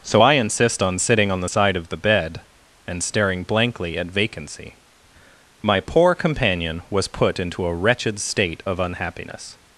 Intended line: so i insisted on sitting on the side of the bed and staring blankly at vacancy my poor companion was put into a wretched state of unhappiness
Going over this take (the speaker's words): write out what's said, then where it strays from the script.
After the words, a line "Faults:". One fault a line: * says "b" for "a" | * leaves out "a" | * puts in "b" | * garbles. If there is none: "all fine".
so i insist on sitting on the side of the bed and staring blankly at vacancy my poor companion was put into a wretched state of unhappiness
Faults:
* says "insist" for "insisted"